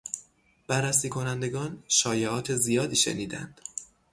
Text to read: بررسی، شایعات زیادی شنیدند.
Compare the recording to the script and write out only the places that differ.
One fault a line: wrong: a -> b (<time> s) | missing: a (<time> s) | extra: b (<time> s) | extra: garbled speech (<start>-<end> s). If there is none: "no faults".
extra: کنندگان (1.1 s)